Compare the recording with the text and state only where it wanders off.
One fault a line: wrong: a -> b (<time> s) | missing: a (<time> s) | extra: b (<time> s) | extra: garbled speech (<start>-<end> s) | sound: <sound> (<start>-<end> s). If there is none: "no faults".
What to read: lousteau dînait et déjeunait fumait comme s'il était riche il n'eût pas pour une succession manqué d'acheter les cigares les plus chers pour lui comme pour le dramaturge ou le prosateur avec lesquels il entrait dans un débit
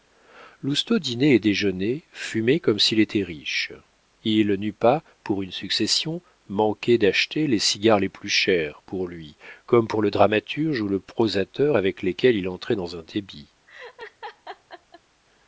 sound: laugh (13.7-15.0 s)